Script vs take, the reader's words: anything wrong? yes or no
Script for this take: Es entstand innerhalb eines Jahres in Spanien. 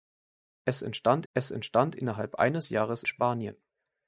yes